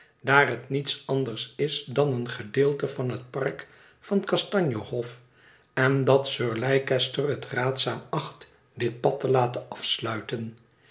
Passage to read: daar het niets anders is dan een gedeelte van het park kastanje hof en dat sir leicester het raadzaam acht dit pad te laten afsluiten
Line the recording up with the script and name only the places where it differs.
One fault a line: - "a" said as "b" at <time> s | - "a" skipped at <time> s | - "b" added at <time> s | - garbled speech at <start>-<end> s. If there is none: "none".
- "van" added at 4.0 s